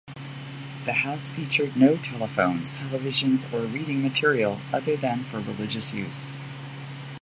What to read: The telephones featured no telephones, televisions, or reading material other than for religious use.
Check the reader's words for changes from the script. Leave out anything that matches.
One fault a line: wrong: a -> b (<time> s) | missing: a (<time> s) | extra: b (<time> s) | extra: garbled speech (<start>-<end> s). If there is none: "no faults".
wrong: telephones -> house (0.9 s)